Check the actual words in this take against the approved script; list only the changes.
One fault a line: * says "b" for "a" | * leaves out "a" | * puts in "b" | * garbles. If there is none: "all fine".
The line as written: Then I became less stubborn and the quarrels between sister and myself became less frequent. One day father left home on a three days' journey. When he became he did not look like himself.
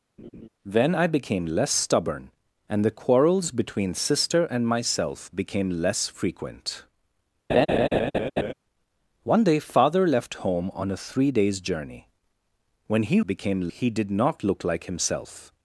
all fine